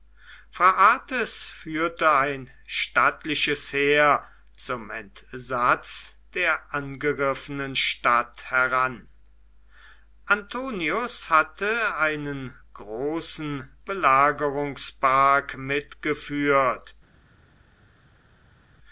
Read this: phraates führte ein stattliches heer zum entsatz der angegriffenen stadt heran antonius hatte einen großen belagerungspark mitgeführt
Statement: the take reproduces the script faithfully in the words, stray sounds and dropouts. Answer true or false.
true